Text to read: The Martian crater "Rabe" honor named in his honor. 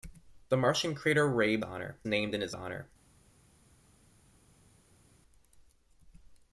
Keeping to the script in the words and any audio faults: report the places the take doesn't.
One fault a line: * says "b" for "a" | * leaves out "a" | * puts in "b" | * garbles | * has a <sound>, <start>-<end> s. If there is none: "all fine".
all fine